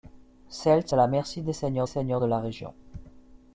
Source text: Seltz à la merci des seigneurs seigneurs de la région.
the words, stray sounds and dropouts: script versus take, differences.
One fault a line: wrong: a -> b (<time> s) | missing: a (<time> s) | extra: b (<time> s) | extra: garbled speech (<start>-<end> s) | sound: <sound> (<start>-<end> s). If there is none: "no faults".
no faults